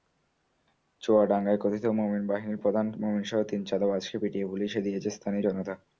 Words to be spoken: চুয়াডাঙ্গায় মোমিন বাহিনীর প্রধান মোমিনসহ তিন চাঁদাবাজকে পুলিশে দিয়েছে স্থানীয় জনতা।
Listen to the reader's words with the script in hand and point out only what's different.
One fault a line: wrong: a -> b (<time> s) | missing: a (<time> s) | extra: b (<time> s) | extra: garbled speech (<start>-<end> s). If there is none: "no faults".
extra: কথিত (1.6 s)
extra: পিটিয়ে (4.2 s)